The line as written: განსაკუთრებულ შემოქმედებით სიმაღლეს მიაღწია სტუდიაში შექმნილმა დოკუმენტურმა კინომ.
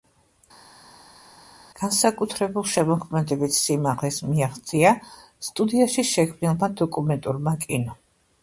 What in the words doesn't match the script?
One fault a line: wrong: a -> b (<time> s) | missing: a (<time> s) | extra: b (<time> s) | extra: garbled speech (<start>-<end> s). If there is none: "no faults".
no faults